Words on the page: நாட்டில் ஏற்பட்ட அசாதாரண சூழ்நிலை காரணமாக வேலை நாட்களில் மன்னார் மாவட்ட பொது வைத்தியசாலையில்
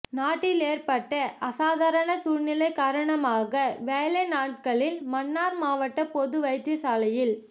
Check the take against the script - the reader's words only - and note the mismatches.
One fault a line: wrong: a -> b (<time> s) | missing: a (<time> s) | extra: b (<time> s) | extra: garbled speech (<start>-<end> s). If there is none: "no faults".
no faults